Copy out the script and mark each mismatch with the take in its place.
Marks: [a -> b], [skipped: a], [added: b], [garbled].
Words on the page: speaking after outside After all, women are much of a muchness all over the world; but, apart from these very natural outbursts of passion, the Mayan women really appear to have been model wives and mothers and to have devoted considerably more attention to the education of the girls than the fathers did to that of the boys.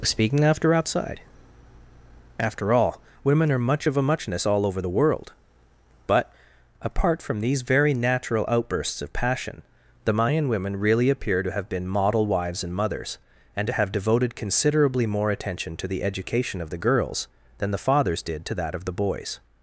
speaking after outside After all, women are much of a muchness all over the world; but, apart from these very natural outbursts of passion, the Mayan women really appear to have been model wives and mothers and to have devoted considerably more attention to the education of the girls than the fathers did to that of the boys.